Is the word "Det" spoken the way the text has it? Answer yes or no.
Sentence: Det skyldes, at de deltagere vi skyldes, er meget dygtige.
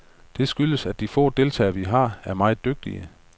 yes